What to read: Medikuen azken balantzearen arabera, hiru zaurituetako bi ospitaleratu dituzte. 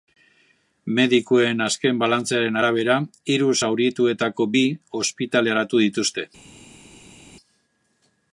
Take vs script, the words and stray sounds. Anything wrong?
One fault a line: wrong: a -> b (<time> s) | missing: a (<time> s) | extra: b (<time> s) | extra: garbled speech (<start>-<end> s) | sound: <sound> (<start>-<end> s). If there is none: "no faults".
no faults